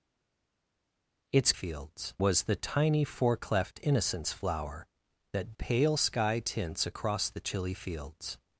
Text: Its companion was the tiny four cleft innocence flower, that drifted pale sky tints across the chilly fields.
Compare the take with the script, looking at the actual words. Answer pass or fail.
fail